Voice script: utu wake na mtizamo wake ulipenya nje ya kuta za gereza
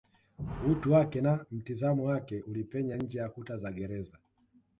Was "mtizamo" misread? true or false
false